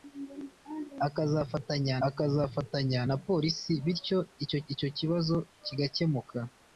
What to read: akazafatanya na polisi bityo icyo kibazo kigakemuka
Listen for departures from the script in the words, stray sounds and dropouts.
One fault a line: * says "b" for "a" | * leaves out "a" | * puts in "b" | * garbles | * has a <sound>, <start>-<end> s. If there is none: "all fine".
* puts in "akazafatanya"
* puts in "icyo"